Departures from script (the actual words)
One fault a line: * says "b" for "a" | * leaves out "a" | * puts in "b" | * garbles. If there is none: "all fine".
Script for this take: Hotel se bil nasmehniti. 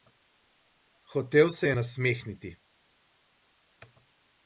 * says "je" for "bil"